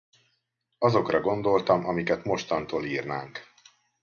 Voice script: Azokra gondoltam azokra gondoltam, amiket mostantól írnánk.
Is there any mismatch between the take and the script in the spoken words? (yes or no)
yes